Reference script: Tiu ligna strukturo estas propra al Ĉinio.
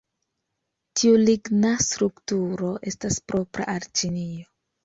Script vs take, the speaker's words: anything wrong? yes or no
no